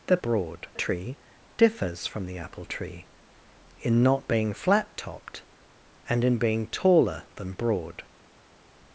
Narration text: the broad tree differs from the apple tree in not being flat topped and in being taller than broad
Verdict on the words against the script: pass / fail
pass